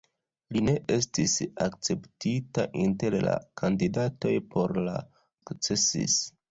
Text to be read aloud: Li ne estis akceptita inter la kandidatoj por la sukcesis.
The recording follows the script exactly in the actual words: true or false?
true